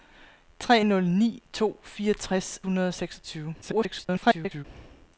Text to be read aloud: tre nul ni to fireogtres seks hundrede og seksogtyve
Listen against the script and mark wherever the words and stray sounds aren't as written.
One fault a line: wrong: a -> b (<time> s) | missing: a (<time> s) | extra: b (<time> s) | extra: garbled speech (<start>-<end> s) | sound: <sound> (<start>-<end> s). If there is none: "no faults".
missing: seks (2.6 s)
extra: garbled speech (3.6-4.6 s)